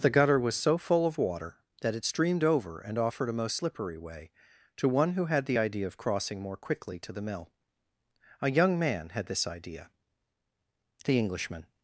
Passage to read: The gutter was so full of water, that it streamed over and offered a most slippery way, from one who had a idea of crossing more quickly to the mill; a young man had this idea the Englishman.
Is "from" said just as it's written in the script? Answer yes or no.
no